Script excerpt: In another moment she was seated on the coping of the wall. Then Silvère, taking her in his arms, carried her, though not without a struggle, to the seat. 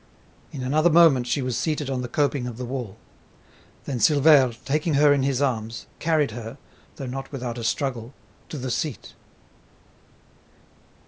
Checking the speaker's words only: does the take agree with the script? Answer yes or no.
yes